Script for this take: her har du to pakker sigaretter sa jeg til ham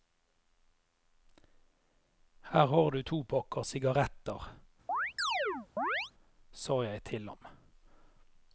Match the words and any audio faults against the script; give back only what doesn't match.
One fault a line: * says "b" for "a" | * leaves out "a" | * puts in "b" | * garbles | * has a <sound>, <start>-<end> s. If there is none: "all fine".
* has a chirp, 4.9-6.1 s